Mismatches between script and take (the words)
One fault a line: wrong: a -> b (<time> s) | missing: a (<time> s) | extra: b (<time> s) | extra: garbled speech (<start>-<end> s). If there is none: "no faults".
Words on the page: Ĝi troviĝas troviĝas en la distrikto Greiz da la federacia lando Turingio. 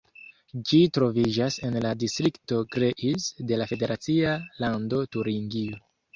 missing: troviĝas (1.6 s)
wrong: da -> de (3.5 s)